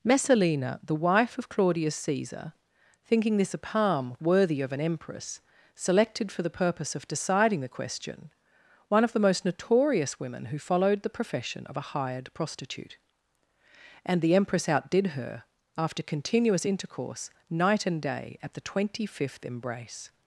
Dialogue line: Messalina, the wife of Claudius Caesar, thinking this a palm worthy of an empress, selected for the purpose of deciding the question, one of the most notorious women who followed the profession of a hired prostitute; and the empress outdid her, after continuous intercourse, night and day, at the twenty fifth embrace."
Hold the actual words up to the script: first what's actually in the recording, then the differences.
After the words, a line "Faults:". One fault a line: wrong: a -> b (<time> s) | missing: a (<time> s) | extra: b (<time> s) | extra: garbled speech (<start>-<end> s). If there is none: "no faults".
Messalina, the wife of Claudius Caesar, thinking this a palm worthy of an empress, selected for the purpose of deciding the question, one of the most notorious women who followed the profession of a hired prostitute; and the empress outdid her, after continuous intercourse, night and day, at the twenty fifth embrace."
Faults:
no faults